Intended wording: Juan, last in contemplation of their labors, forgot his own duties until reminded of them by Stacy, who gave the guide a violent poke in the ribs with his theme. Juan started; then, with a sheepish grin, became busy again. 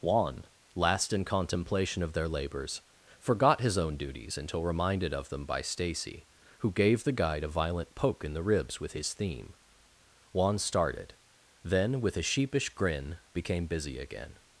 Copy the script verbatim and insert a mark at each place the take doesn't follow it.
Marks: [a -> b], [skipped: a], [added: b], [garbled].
Juan, last in contemplation of their labors, forgot his own duties until reminded of them by Stacy, who gave the guide a violent poke in the ribs with his theme. Juan started; then, with a sheepish grin, became busy again.